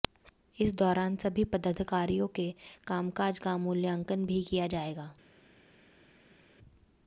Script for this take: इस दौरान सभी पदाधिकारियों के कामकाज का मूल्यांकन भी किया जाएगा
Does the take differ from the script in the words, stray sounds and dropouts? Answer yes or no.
no